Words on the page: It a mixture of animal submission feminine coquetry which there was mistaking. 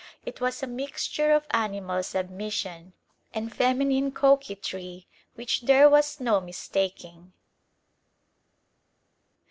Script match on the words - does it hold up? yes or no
no